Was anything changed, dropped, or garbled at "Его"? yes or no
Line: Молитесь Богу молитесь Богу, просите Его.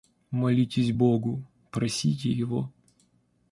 no